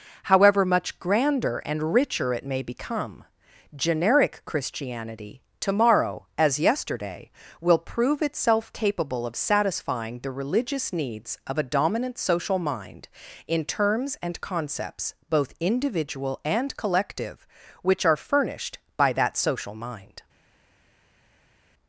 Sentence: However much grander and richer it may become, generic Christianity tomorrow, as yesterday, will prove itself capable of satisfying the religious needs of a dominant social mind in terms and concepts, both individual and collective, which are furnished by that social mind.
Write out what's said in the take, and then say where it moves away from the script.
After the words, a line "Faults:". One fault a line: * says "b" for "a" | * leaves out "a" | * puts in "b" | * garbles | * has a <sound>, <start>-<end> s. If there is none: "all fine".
However much grander and richer it may become, generic Christianity tomorrow, as yesterday, will prove itself capable of satisfying the religious needs of a dominant social mind in terms and concepts, both individual and collective, which are furnished by that social mind.
Faults:
all fine